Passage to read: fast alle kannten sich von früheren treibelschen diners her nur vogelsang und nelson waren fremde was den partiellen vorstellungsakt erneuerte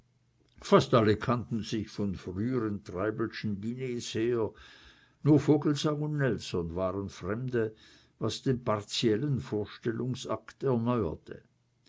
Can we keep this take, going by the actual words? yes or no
yes